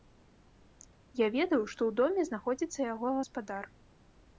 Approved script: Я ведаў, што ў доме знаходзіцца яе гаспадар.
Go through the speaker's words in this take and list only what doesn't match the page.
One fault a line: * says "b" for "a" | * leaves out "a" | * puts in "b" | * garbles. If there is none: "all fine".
* says "яго" for "яе"